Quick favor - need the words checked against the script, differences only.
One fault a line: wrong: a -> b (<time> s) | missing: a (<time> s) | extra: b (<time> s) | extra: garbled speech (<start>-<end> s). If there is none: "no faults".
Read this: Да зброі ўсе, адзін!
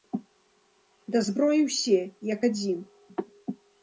extra: як (2.3 s)